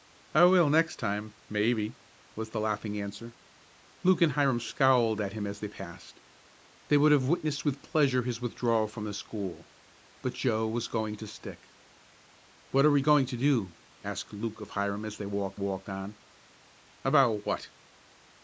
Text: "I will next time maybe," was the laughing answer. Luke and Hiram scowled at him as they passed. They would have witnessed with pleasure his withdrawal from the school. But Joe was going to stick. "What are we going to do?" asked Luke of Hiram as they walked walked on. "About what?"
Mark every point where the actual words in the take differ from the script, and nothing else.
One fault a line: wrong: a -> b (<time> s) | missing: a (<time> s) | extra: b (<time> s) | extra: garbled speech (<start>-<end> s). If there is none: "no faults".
no faults